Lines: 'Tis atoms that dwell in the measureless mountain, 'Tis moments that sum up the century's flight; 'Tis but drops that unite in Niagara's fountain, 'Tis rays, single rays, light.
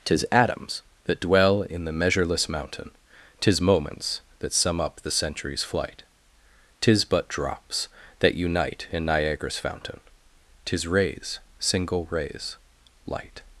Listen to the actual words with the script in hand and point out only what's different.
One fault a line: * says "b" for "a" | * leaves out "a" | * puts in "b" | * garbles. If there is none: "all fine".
all fine